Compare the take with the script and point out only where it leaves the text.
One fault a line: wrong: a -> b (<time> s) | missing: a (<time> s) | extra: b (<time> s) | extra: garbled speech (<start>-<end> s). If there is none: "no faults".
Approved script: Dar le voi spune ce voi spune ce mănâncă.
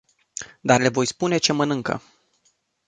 missing: voi spune ce (1.5 s)